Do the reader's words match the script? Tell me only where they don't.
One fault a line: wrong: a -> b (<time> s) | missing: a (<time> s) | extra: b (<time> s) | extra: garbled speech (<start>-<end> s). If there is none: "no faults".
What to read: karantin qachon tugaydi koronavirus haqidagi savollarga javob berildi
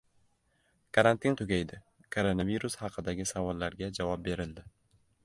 missing: qachon (1.4 s)